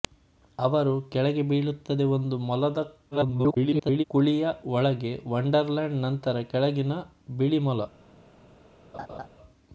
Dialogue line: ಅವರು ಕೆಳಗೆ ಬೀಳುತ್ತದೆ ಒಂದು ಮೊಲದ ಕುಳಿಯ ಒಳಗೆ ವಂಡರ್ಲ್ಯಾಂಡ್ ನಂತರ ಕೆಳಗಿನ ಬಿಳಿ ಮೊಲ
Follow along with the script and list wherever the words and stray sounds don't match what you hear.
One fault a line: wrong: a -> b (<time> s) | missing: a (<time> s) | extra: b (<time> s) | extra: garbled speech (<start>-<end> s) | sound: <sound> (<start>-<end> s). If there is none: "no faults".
extra: garbled speech (3.1-4.0 s)
sound: laugh (8.9-9.3 s)